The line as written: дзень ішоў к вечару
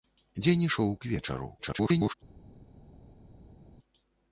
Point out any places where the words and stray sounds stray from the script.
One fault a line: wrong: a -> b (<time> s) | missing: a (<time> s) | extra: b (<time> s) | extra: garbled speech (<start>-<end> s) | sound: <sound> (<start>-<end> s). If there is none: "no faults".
extra: garbled speech (1.6-2.1 s)